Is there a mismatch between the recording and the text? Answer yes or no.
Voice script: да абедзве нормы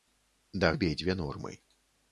no